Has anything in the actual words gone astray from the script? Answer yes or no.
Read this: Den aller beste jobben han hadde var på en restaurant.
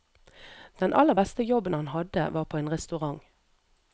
no